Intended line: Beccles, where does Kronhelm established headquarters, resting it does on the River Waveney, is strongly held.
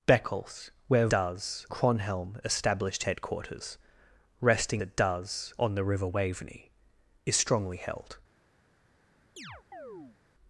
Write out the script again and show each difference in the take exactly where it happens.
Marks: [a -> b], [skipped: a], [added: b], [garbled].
Beccles, where does Kronhelm established headquarters, resting it does on the River Waveney, is strongly held.